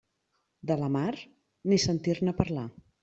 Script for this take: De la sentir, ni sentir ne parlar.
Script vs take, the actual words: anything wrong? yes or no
yes